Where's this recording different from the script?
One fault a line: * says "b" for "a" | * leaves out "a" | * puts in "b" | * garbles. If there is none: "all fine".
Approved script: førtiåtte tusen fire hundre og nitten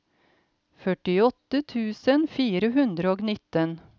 all fine